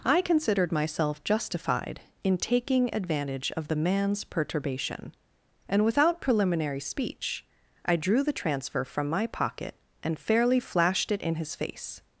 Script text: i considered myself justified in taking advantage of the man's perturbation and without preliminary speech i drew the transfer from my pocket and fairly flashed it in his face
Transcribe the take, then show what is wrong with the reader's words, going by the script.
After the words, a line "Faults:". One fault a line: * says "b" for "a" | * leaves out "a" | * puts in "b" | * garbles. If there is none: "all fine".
i considered myself justified in taking advantage of the man's perturbation and without preliminary speech i drew the transfer from my pocket and fairly flashed it in his face
Faults:
all fine